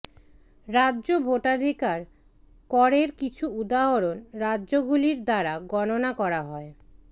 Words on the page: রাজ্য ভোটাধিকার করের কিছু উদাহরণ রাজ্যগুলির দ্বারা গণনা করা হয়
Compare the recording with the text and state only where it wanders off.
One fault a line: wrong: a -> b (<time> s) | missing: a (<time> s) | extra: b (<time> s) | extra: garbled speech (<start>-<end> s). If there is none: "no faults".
no faults